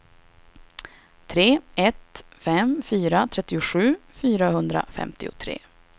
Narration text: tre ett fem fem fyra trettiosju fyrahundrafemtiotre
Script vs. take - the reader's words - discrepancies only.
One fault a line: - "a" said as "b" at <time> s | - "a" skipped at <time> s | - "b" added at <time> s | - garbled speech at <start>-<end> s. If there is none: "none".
- "fem" skipped at 2.8 s